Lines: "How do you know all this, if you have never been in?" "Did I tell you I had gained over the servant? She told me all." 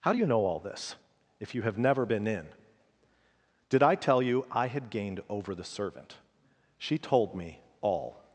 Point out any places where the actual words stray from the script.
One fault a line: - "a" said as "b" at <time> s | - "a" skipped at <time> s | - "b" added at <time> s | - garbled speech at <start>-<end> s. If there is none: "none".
none